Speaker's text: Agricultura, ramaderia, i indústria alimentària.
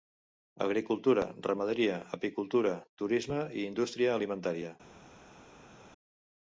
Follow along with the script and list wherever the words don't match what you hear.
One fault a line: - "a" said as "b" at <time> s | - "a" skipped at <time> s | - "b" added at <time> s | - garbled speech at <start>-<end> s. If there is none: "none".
- "apicultura turisme" added at 2.2 s